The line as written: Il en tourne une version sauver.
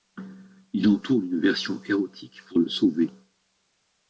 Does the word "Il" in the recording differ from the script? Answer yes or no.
no